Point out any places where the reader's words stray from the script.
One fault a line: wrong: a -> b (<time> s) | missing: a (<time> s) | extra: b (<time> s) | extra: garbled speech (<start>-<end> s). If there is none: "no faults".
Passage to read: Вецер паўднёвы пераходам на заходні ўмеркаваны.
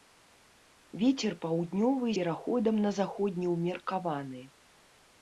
no faults